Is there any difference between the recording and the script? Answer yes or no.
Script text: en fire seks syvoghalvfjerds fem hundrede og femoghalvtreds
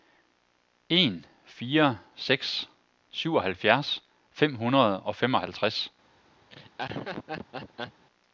no